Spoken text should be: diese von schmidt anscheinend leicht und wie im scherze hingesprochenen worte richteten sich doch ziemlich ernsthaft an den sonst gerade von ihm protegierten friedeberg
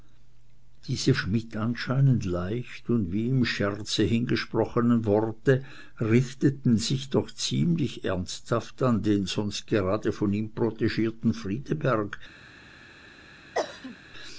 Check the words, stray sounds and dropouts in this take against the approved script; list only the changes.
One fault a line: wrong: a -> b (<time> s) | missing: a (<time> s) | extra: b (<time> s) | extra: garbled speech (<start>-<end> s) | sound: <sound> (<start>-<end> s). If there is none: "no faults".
missing: von (1.1 s)
sound: cough (13.5-14.0 s)